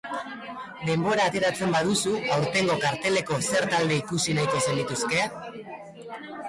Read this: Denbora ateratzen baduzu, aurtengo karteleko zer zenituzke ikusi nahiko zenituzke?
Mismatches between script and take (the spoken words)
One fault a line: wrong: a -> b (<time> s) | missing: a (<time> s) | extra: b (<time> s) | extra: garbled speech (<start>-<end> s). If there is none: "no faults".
wrong: zenituzke -> talde (3.7 s)